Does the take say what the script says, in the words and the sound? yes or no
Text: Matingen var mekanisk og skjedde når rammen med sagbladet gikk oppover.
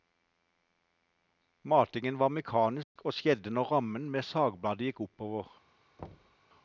no